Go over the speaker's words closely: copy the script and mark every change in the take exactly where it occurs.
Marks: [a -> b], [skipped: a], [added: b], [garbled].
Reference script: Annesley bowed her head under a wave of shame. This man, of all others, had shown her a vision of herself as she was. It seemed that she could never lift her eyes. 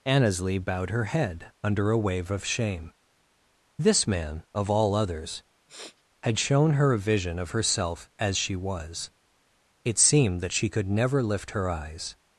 Annesley bowed her head under a wave of shame. This man, of all others, had shown her a vision of herself as she was. It seemed that she could never lift her eyes.